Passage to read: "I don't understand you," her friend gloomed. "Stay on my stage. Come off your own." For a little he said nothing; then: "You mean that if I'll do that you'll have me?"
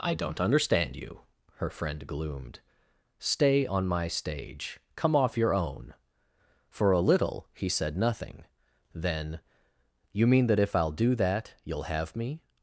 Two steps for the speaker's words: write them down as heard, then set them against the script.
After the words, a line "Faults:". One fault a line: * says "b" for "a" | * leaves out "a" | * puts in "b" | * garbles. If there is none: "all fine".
"I don't understand you," her friend gloomed. "Stay on my stage. Come off your own." For a little he said nothing; then: "You mean that if I'll do that you'll have me?"
Faults:
all fine